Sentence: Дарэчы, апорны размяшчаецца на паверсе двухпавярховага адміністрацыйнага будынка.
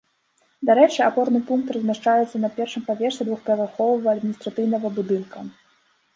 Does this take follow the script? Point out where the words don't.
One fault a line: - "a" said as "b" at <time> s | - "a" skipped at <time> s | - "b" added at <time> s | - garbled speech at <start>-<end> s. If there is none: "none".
- "пункт" added at 1.5 s
- "першым" added at 2.6 s